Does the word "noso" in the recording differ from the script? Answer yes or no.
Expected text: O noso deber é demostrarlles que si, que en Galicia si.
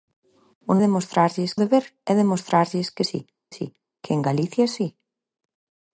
yes